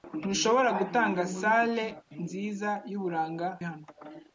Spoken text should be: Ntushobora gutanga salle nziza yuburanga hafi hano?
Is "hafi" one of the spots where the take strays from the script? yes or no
yes